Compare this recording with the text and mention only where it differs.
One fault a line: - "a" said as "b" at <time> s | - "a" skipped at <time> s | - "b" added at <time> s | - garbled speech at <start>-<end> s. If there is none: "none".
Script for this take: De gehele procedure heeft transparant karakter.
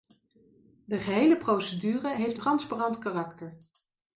none